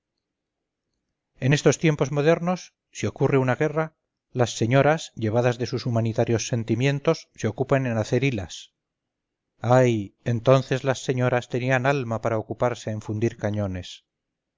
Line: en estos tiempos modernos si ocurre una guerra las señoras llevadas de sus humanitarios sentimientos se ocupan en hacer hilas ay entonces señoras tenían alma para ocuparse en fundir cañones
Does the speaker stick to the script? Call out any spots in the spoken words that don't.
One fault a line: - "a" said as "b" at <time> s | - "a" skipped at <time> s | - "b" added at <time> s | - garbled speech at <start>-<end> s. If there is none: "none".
- "las" added at 10.8 s